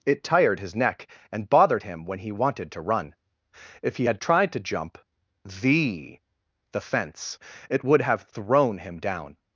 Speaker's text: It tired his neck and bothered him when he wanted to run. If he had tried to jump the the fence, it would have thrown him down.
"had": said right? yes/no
yes